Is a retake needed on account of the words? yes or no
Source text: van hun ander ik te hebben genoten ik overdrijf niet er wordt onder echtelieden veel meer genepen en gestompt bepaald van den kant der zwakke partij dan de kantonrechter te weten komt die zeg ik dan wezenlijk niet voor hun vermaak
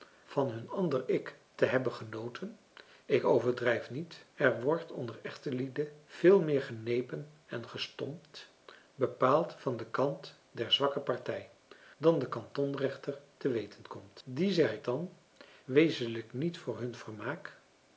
no